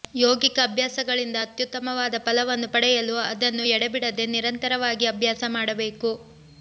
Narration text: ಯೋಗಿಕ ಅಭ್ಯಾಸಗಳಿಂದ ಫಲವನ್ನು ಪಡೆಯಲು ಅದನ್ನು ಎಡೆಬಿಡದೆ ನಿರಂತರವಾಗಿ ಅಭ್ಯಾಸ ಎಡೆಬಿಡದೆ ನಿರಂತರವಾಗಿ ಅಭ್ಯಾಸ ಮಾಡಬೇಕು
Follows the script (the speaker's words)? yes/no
no